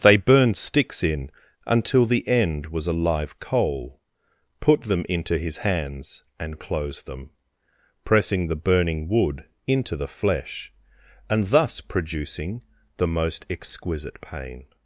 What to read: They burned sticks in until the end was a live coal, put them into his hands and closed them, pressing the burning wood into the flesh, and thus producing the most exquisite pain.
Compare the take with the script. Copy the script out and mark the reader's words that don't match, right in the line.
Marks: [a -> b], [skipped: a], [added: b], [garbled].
They burned sticks in until the end was a live coal, put them into his hands and closed them, pressing the burning wood into the flesh, and thus producing the most exquisite pain.